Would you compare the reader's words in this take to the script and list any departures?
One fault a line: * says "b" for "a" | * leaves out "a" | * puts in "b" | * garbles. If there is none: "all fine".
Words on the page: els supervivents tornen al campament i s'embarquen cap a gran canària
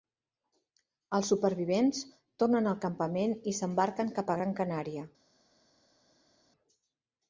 all fine